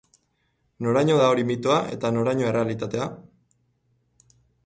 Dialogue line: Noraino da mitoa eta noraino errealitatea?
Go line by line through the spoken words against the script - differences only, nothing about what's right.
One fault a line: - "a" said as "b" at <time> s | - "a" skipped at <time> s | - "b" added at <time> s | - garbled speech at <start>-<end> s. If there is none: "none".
- "hori" added at 1.3 s